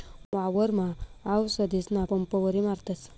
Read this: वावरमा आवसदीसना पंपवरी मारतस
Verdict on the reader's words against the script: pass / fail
pass